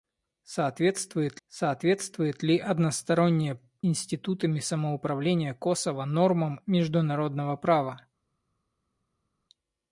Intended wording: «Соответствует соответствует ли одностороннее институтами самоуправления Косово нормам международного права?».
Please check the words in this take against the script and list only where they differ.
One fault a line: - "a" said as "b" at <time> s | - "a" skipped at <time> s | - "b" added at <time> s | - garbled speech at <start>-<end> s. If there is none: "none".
none